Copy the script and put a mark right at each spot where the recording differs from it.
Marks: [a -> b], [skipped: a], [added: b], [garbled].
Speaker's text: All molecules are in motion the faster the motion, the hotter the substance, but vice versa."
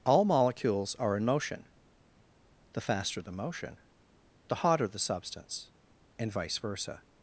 All molecules are in motion the faster the motion, the hotter the substance, [but -> and] vice versa."